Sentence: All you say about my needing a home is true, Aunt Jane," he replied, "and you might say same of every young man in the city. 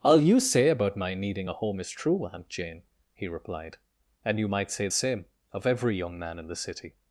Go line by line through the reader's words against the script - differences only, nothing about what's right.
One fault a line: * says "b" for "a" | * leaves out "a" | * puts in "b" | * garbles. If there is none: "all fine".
all fine